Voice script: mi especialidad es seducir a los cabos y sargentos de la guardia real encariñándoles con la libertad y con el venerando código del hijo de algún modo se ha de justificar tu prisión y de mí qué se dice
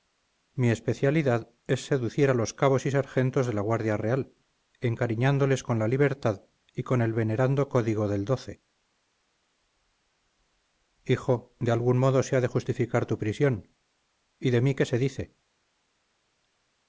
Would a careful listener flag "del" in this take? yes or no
no